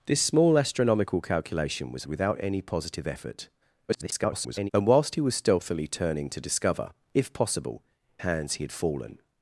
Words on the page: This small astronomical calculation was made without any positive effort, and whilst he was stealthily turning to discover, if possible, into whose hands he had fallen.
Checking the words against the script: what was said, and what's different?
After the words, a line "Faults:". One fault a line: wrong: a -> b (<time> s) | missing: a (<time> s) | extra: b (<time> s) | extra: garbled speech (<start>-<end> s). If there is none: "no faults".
This small astronomical calculation was without any positive effort, [garbled] and whilst he was stealthily turning to discover, if possible, hands he had fallen.
Faults:
missing: made (2.1 s)
extra: garbled speech (3.9-4.7 s)
missing: into whose (7.8 s)